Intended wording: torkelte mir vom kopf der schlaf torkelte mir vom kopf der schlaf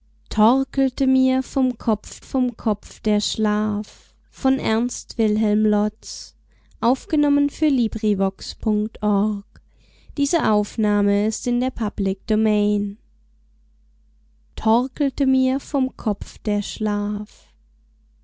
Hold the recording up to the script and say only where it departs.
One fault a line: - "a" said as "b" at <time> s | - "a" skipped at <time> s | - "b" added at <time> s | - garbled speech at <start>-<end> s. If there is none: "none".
- "vom kopf" added at 2.2 s